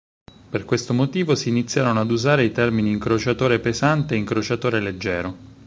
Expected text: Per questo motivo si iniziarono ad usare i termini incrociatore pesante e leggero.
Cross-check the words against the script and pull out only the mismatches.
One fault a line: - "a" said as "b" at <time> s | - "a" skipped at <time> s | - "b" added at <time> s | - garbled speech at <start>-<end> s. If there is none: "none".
- "incrociatore" added at 4.2 s